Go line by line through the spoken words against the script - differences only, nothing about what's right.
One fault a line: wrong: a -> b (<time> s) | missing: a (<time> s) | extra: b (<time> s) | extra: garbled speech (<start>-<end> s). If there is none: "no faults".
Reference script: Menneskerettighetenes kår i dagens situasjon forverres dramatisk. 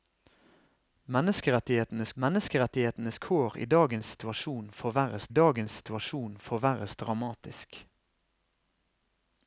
extra: menneskerettighetenes (2.2 s)
extra: dagens situasjon forverres (5.3 s)